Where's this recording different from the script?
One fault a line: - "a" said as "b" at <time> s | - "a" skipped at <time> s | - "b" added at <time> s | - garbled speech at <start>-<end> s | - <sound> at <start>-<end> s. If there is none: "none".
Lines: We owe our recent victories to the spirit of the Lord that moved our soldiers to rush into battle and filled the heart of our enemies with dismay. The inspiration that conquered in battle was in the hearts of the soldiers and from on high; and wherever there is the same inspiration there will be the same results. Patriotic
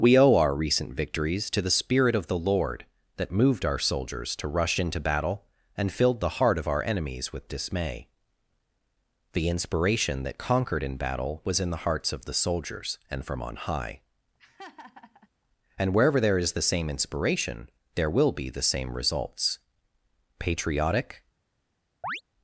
- laugh at 14.4-15.3 s
- chirp at 22.0-22.2 s